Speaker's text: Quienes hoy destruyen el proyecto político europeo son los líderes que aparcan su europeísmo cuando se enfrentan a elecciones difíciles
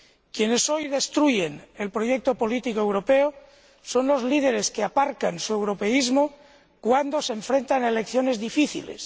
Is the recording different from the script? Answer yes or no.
no